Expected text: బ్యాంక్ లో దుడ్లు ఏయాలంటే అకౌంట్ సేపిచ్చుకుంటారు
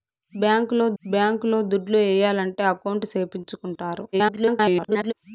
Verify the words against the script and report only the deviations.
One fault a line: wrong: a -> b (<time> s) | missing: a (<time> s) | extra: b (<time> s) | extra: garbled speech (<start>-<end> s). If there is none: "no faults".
extra: బ్యాంక్ లో (1.0 s)
extra: garbled speech (4.1-5.1 s)